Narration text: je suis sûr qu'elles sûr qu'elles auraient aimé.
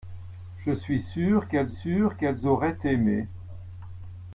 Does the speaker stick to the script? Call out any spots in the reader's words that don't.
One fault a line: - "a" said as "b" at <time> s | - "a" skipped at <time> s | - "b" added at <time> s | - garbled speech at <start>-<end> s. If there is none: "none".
none